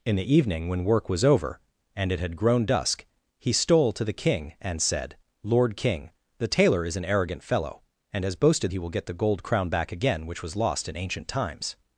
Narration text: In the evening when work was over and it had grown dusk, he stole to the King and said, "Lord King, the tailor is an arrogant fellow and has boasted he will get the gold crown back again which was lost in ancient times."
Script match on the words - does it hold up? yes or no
yes